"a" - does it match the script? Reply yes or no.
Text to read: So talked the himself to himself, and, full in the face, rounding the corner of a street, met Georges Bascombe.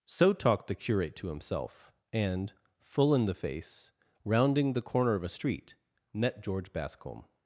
yes